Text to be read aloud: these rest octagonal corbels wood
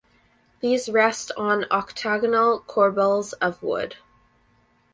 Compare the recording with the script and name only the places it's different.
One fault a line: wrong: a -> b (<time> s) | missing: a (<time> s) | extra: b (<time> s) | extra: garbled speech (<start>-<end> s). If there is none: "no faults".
extra: on (1.4 s)
extra: of (3.4 s)